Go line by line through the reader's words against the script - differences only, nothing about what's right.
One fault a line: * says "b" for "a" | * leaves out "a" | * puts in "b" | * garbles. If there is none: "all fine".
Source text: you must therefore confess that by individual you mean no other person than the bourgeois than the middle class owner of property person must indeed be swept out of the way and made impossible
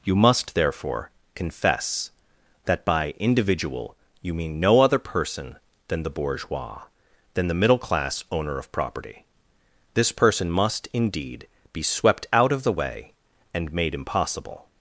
* puts in "this"